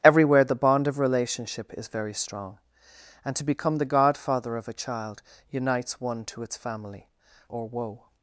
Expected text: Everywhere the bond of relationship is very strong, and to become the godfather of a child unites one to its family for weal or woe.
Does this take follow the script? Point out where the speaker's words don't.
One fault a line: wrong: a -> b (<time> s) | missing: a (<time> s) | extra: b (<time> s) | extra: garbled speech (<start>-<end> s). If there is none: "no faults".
missing: for weal (7.1 s)